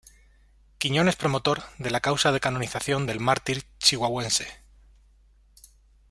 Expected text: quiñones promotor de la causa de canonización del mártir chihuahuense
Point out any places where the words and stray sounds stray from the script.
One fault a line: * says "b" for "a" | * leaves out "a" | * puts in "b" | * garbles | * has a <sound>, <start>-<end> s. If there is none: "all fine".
all fine